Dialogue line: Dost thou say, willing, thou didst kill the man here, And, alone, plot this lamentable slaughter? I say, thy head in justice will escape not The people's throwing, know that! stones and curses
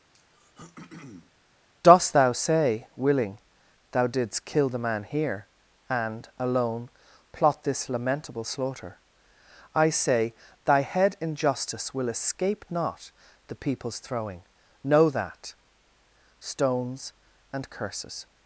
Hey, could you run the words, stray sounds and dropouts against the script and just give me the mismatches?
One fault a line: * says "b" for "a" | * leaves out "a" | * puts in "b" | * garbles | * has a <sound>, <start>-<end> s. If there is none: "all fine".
* has a throat clearing, 0.1-1.3 s